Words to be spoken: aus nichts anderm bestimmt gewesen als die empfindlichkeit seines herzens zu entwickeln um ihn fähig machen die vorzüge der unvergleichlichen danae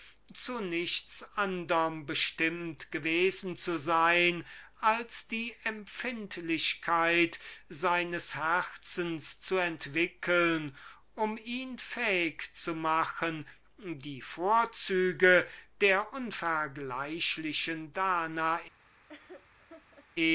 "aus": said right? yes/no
no